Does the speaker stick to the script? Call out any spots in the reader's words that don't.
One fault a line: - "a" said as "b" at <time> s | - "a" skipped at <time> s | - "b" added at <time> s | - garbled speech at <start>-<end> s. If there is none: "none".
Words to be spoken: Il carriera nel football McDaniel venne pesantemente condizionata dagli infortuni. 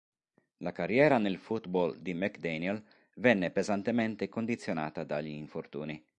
- "Il" said as "La" at 0.6 s
- "di" added at 2.0 s